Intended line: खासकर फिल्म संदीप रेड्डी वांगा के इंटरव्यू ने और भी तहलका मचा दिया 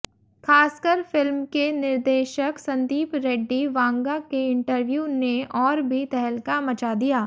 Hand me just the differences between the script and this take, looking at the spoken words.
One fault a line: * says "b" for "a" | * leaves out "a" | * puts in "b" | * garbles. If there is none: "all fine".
* puts in "के निर्देशक"